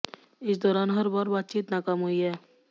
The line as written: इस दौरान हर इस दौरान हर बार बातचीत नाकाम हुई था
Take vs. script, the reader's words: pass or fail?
fail